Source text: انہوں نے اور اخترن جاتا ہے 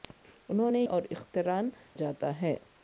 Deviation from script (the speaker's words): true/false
false